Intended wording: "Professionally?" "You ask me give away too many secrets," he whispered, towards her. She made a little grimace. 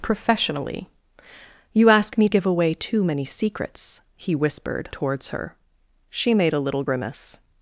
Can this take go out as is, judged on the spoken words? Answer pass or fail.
pass